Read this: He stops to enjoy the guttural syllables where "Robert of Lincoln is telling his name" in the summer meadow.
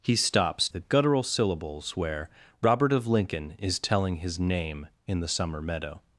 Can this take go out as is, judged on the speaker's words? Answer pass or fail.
fail